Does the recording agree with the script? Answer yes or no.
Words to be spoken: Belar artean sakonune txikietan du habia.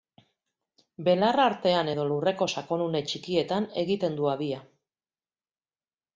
no